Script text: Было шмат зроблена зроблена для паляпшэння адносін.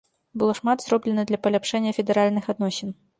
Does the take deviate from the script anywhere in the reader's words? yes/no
yes